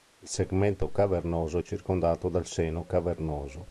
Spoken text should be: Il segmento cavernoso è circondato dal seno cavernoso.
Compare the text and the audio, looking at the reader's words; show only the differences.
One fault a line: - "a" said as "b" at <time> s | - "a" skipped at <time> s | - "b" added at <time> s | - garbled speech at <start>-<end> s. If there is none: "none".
none